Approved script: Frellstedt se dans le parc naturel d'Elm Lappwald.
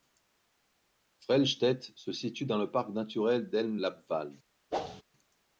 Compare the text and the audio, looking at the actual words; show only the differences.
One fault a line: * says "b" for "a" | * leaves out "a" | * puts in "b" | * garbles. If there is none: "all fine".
* puts in "situe"